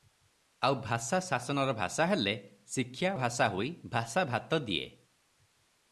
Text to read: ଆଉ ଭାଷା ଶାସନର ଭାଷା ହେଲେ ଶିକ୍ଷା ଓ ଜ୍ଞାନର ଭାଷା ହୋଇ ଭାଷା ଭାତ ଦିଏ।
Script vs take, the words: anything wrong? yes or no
yes